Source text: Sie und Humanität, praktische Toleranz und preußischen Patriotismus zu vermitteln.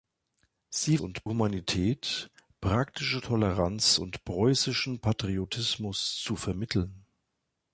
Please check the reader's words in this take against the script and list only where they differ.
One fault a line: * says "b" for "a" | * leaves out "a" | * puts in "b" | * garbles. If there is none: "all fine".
all fine